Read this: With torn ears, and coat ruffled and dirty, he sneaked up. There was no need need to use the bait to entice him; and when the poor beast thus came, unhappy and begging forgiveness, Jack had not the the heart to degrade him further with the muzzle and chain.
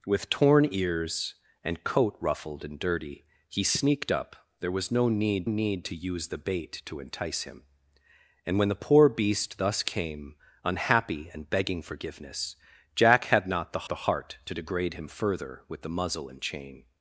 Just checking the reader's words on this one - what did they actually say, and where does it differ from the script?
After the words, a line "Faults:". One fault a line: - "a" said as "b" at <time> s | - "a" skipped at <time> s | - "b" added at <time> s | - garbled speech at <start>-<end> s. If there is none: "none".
With torn ears, and coat ruffled and dirty, he sneaked up. There was no need need to use the bait to entice him; and when the poor beast thus came, unhappy and begging forgiveness, Jack had not the the heart to degrade him further with the muzzle and chain.
Faults:
none